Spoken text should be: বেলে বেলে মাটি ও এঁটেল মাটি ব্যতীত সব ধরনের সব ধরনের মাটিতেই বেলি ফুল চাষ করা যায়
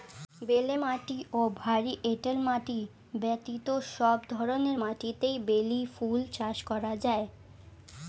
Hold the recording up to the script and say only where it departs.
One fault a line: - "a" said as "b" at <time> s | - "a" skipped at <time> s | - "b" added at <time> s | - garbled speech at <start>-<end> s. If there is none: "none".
- "বেলে" skipped at 0.8 s
- "ভারী" added at 1.6 s
- "সব ধরনের" skipped at 4.8 s